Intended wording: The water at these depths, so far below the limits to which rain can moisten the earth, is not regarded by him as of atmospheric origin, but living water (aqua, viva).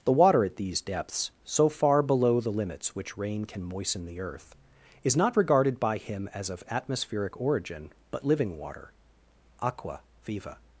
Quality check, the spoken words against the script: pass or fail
fail